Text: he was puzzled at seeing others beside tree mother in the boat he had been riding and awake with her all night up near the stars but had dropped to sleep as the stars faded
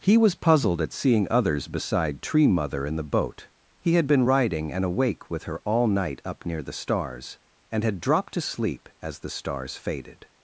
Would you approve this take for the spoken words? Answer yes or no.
no